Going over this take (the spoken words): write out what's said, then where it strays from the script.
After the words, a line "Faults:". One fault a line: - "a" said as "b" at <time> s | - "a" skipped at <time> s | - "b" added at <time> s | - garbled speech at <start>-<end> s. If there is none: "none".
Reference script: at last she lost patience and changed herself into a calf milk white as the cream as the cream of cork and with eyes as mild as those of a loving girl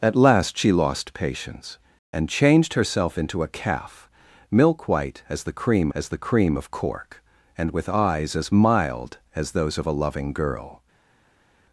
at last she lost patience and changed herself into a calf milk white as the cream as the cream of cork and with eyes as mild as those of a loving girl
Faults:
none